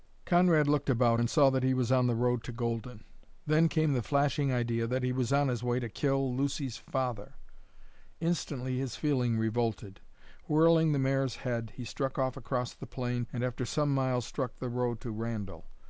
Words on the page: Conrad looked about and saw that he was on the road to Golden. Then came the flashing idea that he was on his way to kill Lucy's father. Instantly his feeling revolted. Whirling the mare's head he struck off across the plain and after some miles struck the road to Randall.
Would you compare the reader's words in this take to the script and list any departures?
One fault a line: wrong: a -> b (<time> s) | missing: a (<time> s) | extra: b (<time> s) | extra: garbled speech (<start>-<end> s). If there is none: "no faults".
no faults